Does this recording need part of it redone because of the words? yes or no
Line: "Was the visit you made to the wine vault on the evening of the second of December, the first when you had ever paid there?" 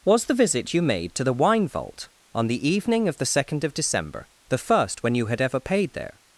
no